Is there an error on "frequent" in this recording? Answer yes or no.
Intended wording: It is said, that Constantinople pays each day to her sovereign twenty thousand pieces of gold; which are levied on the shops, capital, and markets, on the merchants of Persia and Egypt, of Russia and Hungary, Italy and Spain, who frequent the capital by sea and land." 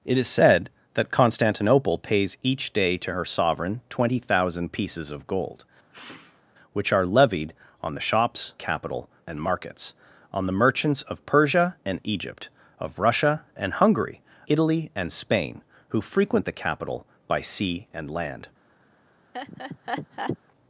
no